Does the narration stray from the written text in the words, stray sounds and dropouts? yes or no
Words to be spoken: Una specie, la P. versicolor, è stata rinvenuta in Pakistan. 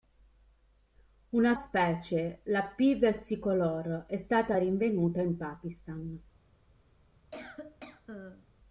yes